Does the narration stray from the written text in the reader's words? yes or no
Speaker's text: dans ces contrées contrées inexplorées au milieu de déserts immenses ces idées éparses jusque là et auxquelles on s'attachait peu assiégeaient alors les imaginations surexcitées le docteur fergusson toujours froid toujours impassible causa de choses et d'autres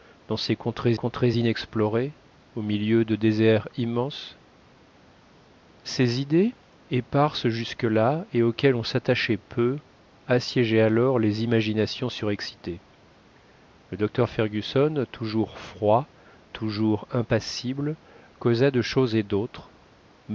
no